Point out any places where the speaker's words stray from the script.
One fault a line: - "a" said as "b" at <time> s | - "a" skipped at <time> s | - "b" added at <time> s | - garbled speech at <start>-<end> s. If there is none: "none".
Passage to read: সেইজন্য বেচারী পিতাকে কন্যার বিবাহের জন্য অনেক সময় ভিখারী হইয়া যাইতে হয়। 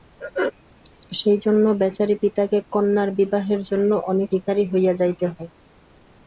- "সময়" skipped at 4.3 s